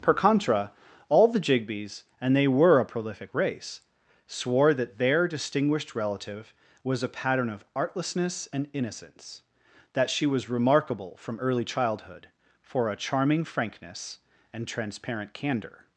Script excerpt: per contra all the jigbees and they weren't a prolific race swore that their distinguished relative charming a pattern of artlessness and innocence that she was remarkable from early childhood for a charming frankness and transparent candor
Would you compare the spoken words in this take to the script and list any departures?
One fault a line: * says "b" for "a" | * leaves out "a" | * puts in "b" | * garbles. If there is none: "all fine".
* says "were" for "weren't"
* says "was" for "charming"